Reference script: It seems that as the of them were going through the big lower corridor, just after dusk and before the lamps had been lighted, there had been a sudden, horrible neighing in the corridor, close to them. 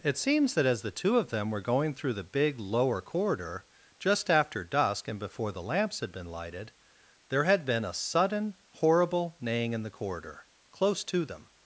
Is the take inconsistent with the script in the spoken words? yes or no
yes